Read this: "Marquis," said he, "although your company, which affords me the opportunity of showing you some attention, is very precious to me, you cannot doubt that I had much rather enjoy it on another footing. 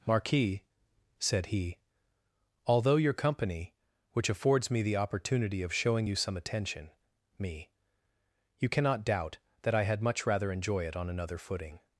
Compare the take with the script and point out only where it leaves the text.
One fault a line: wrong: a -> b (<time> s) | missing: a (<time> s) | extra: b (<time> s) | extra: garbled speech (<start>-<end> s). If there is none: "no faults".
missing: is very precious to (6.9 s)